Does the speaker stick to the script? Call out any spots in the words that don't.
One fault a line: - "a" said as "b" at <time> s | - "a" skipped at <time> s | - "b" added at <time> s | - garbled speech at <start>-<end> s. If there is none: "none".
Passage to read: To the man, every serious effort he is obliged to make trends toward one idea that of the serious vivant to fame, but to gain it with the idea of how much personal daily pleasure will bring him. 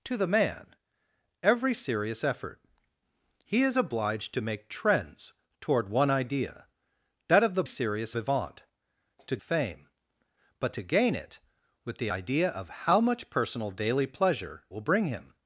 none